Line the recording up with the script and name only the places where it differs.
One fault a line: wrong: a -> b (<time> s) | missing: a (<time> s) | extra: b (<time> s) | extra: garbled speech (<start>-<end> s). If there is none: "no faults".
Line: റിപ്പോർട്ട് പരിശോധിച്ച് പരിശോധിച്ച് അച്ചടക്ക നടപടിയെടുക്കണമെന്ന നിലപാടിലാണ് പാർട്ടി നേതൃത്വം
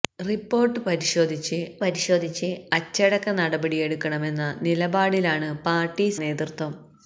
no faults